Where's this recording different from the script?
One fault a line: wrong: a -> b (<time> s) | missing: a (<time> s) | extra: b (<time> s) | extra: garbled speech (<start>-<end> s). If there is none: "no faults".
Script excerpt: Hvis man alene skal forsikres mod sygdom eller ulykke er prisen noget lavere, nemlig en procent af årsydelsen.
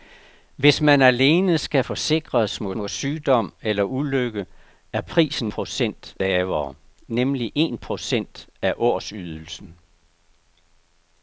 extra: mod (2.7 s)
wrong: noget -> procent (5.5 s)